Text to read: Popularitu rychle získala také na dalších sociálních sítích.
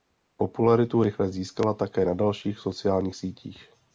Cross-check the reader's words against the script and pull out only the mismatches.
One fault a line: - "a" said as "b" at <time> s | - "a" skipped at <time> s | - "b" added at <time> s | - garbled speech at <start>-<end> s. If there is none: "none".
none